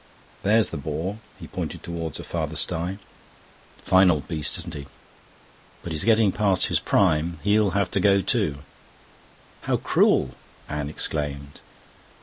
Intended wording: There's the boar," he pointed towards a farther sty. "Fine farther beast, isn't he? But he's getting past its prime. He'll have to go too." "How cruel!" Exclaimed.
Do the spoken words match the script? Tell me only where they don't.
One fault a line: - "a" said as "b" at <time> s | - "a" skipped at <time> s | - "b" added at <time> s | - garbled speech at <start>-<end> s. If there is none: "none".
- "farther" said as "old" at 4.1 s
- "its" said as "his" at 6.7 s
- "Anne" added at 10.7 s